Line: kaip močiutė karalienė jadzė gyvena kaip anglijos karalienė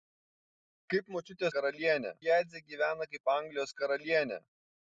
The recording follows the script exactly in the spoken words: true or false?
true